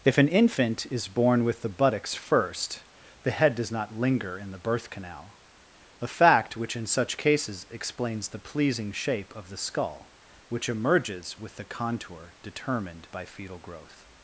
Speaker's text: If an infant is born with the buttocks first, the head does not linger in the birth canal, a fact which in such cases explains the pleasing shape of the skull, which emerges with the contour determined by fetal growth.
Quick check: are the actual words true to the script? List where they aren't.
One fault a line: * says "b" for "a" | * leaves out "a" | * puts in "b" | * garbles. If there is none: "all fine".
all fine